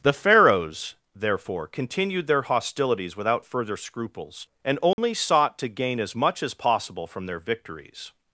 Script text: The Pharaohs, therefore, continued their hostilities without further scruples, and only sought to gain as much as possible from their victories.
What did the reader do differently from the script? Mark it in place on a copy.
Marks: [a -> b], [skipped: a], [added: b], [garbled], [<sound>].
The Pharaohs, therefore, continued their hostilities without further scruples, and only [dropout] sought to gain as much as possible from their victories.